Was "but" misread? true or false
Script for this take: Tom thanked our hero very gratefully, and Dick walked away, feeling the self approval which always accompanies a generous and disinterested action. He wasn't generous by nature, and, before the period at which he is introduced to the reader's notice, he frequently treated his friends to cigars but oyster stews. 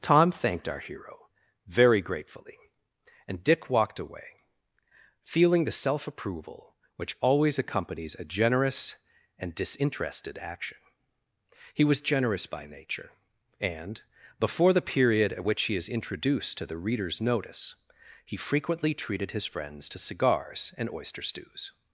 true